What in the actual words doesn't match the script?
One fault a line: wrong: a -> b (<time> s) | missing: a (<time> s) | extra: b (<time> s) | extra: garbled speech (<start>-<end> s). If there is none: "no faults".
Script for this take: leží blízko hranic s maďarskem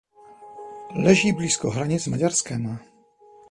missing: s (2.0 s)